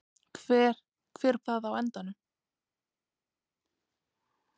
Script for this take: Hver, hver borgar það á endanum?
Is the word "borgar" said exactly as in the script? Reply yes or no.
no